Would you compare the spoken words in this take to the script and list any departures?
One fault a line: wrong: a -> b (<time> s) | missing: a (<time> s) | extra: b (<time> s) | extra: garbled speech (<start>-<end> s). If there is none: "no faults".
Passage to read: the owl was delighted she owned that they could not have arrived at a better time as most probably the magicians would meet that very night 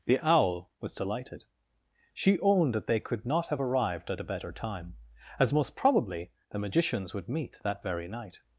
no faults